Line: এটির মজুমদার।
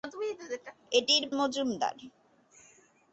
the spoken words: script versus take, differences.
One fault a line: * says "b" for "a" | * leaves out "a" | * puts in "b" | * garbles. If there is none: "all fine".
all fine